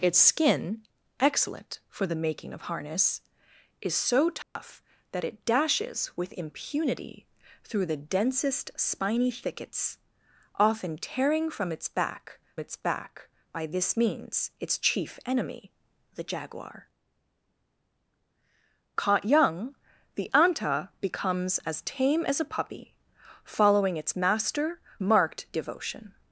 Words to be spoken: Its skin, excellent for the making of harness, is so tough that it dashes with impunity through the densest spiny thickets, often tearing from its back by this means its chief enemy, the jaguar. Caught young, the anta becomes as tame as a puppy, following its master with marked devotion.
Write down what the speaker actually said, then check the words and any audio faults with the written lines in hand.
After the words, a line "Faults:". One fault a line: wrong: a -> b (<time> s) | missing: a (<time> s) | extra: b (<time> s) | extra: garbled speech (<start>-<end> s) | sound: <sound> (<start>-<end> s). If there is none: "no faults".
Its skin, excellent for the making of harness, is so tough that it dashes with impunity through the densest spiny thickets, often tearing from its back its back by this means its chief enemy, the jaguar. Caught young, the anta becomes as tame as a puppy, following its master marked devotion.
Faults:
sound: dropout (4.4-4.6 s)
extra: its back (12.6 s)
missing: with (24.8 s)